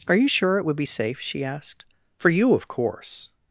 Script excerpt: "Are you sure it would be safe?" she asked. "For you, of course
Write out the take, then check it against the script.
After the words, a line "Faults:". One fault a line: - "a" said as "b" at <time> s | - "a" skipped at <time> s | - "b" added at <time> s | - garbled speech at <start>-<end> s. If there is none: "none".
"Are you sure it would be safe?" she asked. "For you, of course
Faults:
none